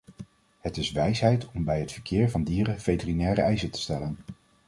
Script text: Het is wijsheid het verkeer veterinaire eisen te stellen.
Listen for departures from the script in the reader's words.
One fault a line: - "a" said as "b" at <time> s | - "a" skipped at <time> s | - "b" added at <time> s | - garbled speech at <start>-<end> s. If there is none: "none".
- "om bij" added at 1.5 s
- "van dieren" added at 2.3 s